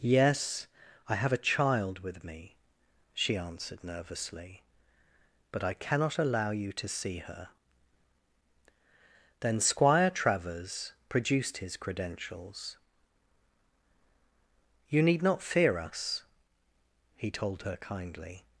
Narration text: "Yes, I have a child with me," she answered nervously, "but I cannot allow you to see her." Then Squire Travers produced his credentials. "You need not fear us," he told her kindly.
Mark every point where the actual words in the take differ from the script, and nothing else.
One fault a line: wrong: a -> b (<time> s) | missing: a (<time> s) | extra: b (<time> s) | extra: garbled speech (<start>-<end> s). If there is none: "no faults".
no faults